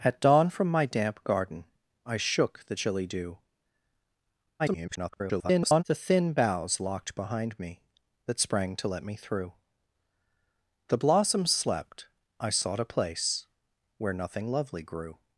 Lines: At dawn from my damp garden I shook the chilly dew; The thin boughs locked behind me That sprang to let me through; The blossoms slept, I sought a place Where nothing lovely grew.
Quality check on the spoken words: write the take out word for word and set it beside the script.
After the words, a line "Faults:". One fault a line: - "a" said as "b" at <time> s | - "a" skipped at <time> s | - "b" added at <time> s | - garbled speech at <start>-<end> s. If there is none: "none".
At dawn from my damp garden I shook the chilly dew; [garbled] The thin boughs locked behind me That sprang to let me through; The blossoms slept, I sought a place Where nothing lovely grew.
Faults:
- garbled speech at 4.6-5.8 s